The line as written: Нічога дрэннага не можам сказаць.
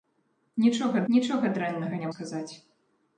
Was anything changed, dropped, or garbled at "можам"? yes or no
yes